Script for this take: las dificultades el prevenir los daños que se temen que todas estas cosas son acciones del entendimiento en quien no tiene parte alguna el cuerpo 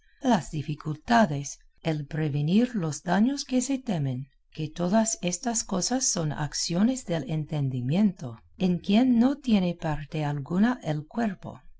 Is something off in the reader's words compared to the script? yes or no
no